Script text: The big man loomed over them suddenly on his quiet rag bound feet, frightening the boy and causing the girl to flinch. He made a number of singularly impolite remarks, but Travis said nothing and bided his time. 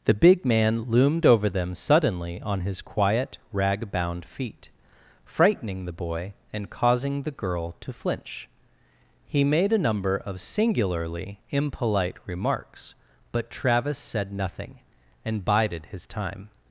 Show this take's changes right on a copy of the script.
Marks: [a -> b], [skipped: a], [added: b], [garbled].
The big man loomed over them suddenly on his quiet rag bound feet, frightening the boy and causing the girl to flinch. He made a number of singularly impolite remarks, but Travis said nothing and bided his time.